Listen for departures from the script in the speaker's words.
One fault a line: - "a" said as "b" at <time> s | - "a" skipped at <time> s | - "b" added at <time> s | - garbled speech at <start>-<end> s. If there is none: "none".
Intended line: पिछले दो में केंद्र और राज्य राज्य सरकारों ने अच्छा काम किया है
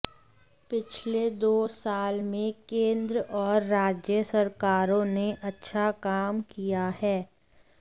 - "साल" added at 1.7 s
- "राज्य" skipped at 4.2 s